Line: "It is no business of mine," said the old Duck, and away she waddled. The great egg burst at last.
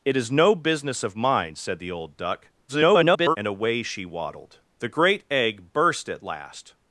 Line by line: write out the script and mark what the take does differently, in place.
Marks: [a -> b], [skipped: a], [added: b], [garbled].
"It is no business of mine," said the old Duck, [garbled] and away she waddled. The great egg burst at last.